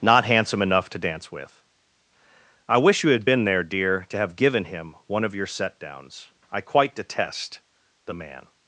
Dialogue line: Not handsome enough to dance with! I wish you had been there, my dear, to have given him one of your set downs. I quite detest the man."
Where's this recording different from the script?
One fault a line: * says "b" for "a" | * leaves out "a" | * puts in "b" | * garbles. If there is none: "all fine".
* leaves out "my"